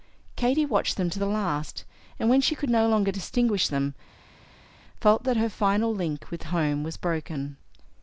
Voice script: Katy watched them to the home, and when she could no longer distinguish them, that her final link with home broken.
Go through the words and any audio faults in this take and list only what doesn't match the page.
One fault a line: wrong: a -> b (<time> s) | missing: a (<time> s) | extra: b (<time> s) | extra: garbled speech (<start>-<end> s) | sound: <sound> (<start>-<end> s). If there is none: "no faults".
wrong: home -> last (1.3 s)
extra: felt (5.0 s)
extra: was (6.8 s)